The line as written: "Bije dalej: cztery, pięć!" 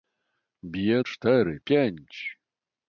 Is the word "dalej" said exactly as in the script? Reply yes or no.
no